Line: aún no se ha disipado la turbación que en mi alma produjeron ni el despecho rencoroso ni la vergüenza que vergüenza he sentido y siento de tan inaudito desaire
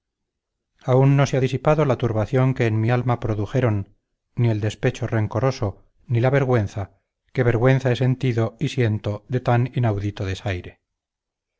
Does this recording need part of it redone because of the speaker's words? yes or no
no